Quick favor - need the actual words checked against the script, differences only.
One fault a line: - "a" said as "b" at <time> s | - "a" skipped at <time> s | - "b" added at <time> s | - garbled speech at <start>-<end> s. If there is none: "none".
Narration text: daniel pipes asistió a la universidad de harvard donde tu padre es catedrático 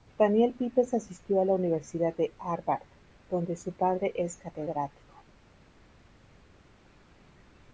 - "tu" said as "su" at 3.6 s